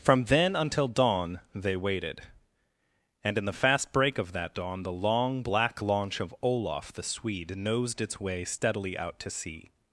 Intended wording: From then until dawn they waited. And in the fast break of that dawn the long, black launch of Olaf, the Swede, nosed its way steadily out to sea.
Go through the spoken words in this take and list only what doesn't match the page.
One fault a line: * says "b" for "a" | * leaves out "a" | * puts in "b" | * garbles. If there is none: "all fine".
all fine